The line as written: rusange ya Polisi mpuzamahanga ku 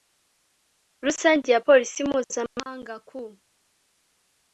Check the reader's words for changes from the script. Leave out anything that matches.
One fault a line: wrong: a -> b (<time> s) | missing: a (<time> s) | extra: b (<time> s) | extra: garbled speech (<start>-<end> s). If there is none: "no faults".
no faults